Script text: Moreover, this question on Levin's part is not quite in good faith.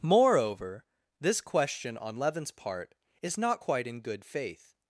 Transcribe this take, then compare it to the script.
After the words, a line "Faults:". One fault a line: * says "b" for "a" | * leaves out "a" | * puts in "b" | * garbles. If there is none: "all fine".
Moreover, this question on Levin's part is not quite in good faith.
Faults:
all fine